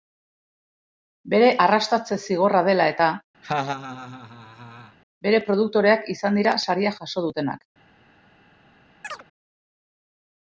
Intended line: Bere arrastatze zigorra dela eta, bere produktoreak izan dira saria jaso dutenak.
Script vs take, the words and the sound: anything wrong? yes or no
yes